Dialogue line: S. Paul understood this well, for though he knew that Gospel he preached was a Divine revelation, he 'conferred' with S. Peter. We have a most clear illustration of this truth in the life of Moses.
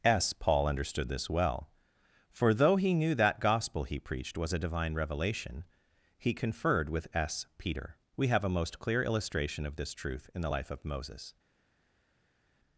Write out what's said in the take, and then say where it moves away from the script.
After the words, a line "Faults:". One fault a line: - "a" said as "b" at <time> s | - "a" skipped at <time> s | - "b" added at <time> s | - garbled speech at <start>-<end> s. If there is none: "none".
S. Paul understood this well, for though he knew that Gospel he preached was a Divine revelation, he 'conferred' with S. Peter. We have a most clear illustration of this truth in the life of Moses.
Faults:
none